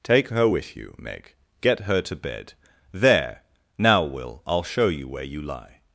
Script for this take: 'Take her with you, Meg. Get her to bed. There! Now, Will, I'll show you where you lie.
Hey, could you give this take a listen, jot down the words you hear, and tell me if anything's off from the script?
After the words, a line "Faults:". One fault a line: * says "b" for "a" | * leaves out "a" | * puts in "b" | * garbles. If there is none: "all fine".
'Take her with you, Meg. Get her to bed. There! Now, Will, I'll show you where you lie.
Faults:
all fine